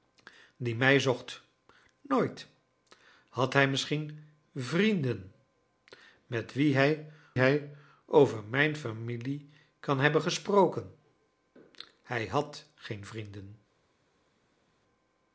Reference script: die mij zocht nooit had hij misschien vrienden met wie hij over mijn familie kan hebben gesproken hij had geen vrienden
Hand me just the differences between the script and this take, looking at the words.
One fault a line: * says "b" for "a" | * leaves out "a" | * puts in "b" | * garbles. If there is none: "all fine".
* puts in "hij"